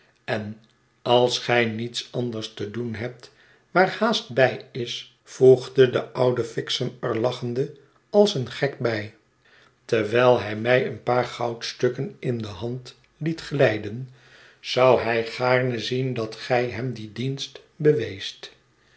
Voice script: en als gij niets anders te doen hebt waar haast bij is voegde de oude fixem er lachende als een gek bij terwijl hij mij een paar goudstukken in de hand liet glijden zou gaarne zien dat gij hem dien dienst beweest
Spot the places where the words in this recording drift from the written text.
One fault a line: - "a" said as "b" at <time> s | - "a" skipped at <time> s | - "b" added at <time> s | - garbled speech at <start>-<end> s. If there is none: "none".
- "hij" added at 15.0 s